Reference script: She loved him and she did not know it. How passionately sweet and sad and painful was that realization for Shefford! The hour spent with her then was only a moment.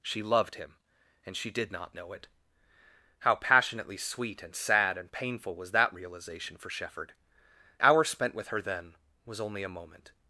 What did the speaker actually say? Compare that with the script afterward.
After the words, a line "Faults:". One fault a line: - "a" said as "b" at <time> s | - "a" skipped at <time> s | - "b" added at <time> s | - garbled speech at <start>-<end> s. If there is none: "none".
She loved him and she did not know it. How passionately sweet and sad and painful was that realization for Shefford! Hour spent with her then was only a moment.
Faults:
- "The" skipped at 7.1 s